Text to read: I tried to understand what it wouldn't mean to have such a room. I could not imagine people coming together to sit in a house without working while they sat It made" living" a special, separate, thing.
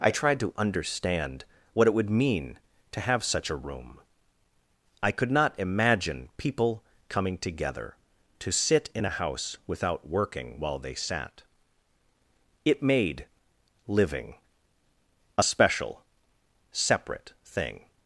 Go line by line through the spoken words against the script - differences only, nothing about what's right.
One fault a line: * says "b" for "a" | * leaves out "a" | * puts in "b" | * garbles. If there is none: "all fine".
* says "would" for "wouldn't"